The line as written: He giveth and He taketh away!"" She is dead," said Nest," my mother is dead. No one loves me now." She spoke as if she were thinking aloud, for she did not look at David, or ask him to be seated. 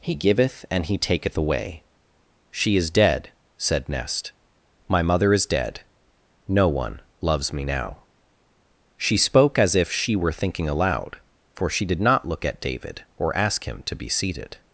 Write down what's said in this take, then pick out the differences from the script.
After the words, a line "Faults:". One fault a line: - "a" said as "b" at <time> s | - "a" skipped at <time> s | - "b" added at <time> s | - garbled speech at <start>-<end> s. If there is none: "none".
He giveth and He taketh away!"" She is dead," said Nest," my mother is dead. No one loves me now." She spoke as if she were thinking aloud, for she did not look at David, or ask him to be seated.
Faults:
none